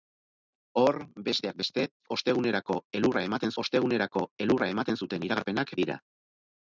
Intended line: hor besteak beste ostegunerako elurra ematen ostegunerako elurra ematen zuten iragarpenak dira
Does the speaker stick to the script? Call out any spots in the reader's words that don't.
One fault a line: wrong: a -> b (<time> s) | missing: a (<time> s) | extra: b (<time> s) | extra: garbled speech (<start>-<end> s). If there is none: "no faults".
no faults